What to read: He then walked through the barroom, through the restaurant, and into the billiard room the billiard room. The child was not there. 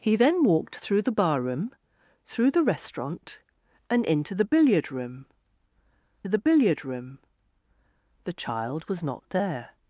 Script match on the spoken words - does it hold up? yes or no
yes